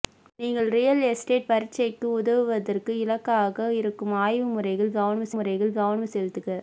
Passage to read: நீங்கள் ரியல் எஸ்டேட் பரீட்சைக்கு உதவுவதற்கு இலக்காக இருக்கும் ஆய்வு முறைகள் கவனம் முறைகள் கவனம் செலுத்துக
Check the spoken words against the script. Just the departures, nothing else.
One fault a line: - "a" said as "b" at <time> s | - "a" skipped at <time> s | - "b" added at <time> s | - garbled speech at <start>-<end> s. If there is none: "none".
none